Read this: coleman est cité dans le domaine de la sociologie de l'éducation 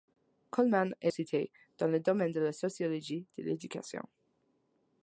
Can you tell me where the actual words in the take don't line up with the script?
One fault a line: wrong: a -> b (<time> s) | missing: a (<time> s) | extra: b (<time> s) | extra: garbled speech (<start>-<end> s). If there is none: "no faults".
no faults